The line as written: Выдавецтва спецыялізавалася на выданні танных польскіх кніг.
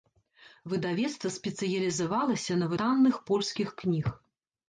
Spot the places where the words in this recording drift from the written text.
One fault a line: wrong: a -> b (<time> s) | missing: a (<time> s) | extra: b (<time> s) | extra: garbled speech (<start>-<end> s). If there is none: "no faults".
missing: выданні (2.7 s)